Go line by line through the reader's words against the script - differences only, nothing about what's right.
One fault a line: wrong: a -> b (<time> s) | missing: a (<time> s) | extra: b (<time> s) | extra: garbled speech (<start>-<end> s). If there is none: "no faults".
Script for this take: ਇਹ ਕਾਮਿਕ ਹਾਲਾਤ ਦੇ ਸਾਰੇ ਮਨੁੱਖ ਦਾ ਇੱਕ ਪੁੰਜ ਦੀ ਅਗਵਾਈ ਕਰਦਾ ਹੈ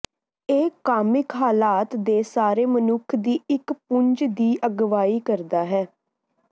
wrong: ਦਾ -> ਦੀ (3.2 s)